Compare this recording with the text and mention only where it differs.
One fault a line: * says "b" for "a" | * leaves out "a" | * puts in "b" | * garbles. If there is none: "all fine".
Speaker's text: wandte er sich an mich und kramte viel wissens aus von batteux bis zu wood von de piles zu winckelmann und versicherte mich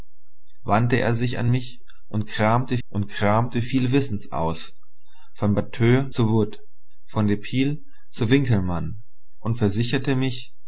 * puts in "und kramte"
* leaves out "bis"